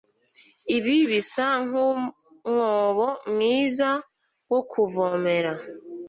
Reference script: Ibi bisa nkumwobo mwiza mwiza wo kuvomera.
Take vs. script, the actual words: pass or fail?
fail